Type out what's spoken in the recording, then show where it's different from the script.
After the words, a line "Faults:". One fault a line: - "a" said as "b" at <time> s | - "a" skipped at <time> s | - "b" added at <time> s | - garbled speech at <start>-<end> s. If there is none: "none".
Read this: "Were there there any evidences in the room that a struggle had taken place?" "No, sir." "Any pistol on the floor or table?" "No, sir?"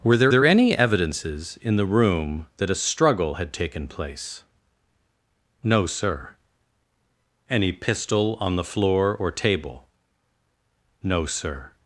"Were there there any evidences in the room that a struggle had taken place?" "No, sir." "Any pistol on the floor or table?" "No, sir?"
Faults:
none